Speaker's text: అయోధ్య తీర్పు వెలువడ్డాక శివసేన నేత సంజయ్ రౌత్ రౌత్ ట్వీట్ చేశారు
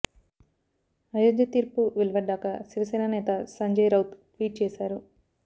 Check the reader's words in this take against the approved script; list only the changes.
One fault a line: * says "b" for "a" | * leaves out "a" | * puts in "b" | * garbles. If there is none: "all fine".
* leaves out "రౌత్"